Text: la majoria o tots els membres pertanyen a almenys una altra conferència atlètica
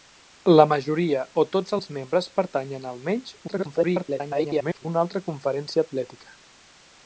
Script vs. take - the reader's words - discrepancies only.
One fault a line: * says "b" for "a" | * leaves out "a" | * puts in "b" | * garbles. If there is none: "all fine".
* garbles